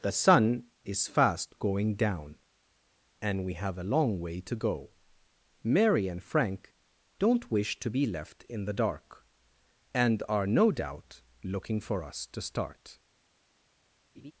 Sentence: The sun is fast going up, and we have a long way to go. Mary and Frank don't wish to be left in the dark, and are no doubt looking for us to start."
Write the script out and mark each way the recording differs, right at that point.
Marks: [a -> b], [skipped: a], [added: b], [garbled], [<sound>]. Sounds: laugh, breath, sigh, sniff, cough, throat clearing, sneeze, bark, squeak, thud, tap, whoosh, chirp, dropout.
The sun is fast going [up, -> down] and we have a long way to go. Mary and Frank don't wish to be left in the dark, and are no doubt looking for us to start." [laugh]